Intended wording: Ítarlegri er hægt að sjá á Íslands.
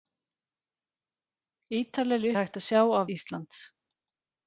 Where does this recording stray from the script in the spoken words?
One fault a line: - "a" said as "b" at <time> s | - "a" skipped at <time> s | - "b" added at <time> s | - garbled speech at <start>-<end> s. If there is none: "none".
none